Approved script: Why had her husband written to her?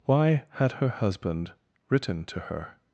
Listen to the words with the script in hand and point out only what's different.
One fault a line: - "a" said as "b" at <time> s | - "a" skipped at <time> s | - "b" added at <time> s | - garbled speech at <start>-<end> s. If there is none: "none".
none